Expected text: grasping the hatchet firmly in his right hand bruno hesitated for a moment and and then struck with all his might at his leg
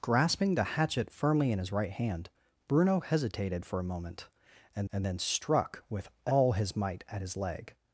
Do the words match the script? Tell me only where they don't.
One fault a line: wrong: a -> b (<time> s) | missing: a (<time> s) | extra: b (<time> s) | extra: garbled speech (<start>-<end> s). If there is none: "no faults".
no faults